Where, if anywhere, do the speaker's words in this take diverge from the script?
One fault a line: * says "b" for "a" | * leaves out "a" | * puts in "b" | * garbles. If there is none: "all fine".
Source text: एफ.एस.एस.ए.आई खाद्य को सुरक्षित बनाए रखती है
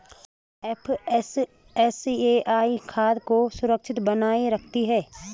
all fine